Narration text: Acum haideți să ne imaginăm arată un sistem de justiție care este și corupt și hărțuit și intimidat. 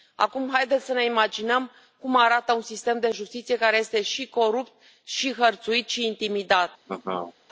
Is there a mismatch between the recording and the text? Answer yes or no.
yes